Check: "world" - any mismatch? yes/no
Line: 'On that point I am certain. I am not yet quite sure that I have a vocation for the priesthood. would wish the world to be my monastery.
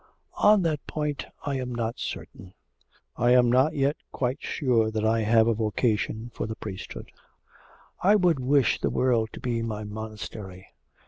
no